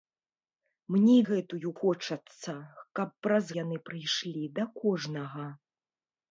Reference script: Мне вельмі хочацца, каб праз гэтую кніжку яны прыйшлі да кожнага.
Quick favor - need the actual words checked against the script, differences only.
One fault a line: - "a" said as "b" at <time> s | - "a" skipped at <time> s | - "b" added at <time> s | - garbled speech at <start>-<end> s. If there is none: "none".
- "вельмі" said as "гэтую" at 1.3 s
- "гэтую кніжку" skipped at 3.5 s